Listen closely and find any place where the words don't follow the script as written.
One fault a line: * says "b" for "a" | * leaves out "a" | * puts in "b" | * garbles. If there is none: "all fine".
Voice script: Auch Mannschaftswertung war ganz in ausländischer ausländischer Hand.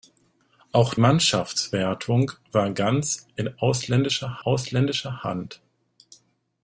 all fine